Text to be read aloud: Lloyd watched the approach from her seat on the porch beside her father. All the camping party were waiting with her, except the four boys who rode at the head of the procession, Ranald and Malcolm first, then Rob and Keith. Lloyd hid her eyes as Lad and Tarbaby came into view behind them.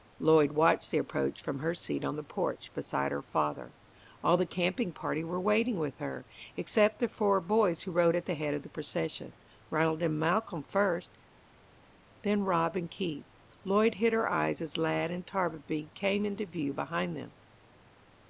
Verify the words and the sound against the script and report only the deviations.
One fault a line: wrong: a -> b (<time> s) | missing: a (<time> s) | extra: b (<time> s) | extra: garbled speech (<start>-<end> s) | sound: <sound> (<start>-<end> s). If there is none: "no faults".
no faults